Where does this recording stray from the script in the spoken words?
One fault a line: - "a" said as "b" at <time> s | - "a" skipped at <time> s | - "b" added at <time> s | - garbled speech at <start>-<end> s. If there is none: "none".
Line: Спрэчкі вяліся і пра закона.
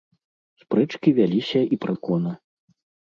none